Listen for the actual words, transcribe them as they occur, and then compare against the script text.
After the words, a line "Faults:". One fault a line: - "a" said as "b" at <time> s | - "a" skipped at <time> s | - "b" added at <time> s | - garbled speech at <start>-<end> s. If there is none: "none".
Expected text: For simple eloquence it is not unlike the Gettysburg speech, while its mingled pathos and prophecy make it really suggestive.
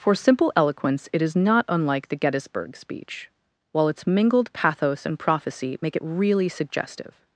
For simple eloquence it is not unlike the Gettysburg speech, while its mingled pathos and prophecy make it really suggestive.
Faults:
none